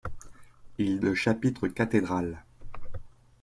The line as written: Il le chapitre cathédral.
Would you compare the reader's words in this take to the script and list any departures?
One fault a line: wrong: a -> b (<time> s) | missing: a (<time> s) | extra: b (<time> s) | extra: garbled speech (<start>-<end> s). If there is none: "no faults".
no faults